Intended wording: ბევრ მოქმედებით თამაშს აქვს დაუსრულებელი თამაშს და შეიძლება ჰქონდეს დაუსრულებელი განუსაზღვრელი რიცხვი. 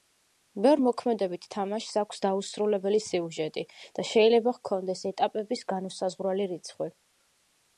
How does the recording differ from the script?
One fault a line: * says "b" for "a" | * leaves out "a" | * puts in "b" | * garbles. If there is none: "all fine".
* says "სიუჟეტი" for "თამაშს"
* says "ეტაპების" for "დაუსრულებელი"